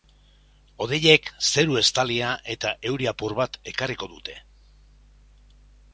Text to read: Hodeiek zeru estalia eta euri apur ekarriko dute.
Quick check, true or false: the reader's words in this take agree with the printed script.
false